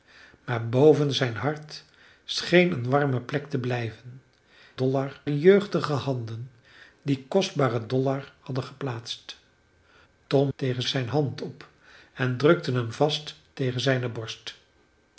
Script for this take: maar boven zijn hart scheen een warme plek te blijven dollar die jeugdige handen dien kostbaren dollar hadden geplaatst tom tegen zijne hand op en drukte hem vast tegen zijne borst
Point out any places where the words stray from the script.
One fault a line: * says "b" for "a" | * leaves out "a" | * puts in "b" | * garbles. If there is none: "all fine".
all fine